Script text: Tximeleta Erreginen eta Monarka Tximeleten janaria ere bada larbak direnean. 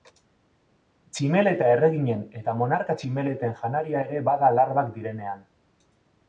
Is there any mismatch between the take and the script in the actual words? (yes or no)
no